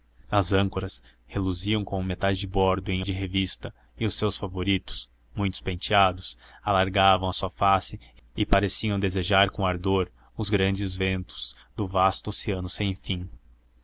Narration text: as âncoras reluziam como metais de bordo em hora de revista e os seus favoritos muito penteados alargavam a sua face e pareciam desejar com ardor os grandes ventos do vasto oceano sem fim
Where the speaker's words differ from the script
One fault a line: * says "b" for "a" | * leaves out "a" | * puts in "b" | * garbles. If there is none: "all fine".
* leaves out "hora"